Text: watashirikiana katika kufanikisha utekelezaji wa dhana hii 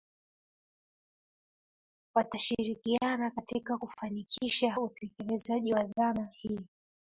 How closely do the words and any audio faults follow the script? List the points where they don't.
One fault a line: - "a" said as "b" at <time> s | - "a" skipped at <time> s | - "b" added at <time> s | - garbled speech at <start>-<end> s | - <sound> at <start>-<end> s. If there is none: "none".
none